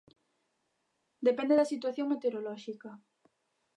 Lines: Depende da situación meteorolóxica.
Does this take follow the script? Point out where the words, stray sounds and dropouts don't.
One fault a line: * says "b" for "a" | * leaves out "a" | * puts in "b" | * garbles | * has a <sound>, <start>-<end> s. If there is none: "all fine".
all fine